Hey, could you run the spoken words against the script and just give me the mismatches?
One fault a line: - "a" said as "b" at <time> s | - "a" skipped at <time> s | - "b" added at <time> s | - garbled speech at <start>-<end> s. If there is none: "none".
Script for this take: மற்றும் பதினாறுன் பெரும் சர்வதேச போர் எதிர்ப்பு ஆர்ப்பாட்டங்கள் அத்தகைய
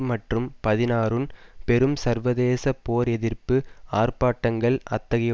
none